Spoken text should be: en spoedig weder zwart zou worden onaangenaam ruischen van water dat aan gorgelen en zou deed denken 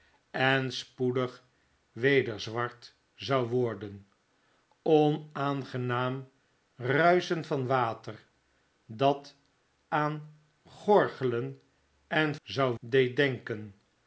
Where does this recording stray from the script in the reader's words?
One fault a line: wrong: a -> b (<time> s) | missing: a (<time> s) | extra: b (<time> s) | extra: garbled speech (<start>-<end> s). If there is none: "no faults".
no faults